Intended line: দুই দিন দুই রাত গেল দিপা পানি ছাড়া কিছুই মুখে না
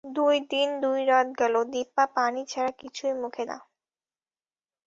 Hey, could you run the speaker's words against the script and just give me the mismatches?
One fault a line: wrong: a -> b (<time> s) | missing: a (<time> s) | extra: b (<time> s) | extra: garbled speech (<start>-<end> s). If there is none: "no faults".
no faults